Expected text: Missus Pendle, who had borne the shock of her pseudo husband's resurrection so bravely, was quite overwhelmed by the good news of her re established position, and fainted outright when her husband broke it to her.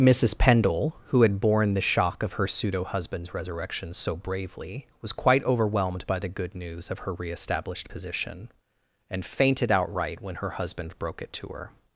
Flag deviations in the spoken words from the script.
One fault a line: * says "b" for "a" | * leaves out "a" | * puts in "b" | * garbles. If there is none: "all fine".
all fine